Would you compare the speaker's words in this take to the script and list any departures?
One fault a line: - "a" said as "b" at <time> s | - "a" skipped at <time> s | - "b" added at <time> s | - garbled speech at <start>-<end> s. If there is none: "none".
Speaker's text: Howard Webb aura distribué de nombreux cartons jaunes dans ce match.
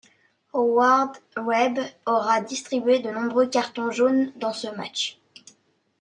none